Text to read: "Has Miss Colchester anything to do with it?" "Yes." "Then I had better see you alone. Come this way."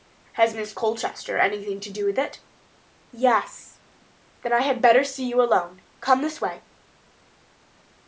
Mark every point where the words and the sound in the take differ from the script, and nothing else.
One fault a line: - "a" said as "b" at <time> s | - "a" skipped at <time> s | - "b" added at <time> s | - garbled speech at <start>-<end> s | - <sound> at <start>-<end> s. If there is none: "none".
none